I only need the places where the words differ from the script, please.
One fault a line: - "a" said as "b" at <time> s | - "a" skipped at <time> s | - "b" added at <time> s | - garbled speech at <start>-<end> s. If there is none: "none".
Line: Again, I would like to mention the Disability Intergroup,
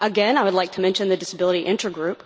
none